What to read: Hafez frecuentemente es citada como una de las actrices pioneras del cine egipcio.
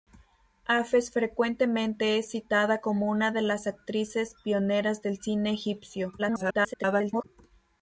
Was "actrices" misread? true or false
false